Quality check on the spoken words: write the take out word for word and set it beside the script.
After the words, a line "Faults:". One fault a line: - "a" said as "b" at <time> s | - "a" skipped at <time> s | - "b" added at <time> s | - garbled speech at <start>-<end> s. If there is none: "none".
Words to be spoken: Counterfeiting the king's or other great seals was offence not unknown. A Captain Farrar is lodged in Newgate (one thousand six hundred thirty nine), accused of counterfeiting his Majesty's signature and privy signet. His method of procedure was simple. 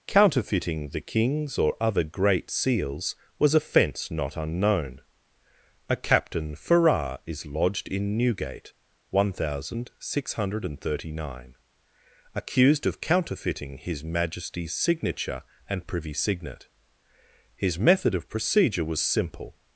Counterfeiting the king's or other great seals was offence not unknown. A Captain Farrar is lodged in Newgate (one thousand six hundred thirty nine), accused of counterfeiting his Majesty's signature and privy signet. His method of procedure was simple.
Faults:
none